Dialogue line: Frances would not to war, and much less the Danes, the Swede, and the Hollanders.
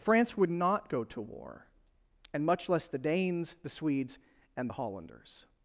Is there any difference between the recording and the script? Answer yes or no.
yes